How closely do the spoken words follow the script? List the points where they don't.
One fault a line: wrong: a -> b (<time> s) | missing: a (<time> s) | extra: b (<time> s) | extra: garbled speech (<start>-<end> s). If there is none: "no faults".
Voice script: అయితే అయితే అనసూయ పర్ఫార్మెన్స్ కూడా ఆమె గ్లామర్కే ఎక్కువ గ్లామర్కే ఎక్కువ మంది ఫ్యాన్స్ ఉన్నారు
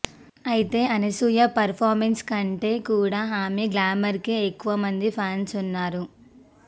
missing: అయితే (0.8 s)
extra: కంటే (2.2 s)
missing: గ్లామర్కే ఎక్కువ (4.7 s)